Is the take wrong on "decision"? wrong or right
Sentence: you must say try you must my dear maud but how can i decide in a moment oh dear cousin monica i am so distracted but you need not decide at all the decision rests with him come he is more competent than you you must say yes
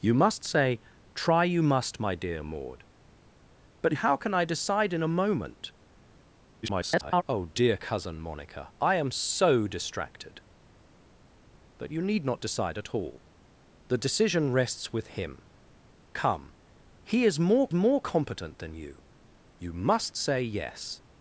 right